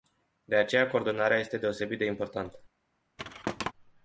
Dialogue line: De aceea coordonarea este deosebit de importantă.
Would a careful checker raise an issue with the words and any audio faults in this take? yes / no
yes